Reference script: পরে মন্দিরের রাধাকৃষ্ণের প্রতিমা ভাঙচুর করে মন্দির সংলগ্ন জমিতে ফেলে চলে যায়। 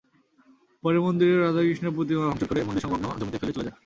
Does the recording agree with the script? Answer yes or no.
yes